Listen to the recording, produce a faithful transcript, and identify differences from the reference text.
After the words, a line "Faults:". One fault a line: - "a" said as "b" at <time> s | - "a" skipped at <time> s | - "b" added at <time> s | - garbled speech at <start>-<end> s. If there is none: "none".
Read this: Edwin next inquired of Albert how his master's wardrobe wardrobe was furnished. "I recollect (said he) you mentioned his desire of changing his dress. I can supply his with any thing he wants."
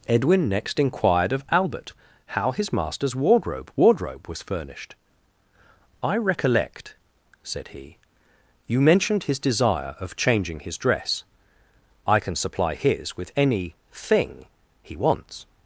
Edwin next inquired of Albert how his master's wardrobe wardrobe was furnished. "I recollect (said he) you mentioned his desire of changing his dress. I can supply his with any thing he wants."
Faults:
none